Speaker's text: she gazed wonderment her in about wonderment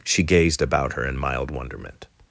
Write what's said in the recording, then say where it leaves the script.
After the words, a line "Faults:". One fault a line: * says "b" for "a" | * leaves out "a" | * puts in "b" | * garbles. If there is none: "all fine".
she gazed about her in mild wonderment
Faults:
* says "about" for "wonderment"
* says "mild" for "about"